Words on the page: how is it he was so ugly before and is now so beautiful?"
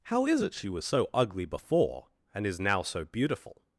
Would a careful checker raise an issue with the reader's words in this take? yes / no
yes